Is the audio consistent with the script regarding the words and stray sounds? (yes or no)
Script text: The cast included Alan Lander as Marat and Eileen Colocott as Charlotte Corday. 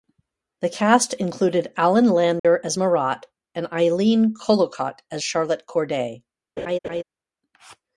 no